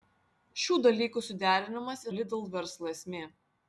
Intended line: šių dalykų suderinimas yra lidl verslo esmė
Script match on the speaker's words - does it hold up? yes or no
no